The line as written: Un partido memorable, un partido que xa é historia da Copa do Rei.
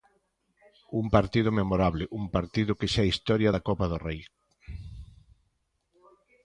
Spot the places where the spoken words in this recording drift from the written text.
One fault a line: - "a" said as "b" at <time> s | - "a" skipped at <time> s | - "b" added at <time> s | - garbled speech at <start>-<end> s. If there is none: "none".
none